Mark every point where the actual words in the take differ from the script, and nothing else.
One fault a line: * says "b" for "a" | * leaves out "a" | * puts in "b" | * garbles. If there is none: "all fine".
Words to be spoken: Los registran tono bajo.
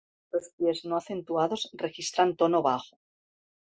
* puts in "pies no acentuados"